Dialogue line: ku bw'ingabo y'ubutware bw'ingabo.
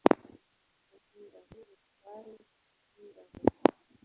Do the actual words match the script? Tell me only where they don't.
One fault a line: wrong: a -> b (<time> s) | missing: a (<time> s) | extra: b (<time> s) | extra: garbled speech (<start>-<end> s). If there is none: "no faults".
no faults